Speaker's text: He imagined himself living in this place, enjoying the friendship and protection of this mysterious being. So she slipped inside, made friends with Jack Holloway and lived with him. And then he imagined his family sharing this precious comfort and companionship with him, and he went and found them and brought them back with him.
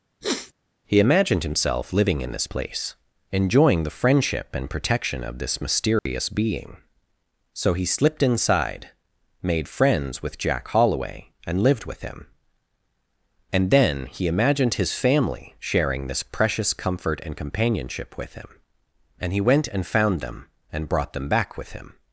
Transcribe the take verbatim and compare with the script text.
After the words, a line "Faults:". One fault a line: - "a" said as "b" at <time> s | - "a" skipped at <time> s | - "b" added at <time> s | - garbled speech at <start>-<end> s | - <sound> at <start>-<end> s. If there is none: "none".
He imagined himself living in this place, enjoying the friendship and protection of this mysterious being. So he slipped inside, made friends with Jack Holloway and lived with him. And then he imagined his family sharing this precious comfort and companionship with him, and he went and found them and brought them back with him.
Faults:
- sniff at 0.2-0.5 s
- dropout at 6.0-6.1 s
- "she" said as "he" at 7.7 s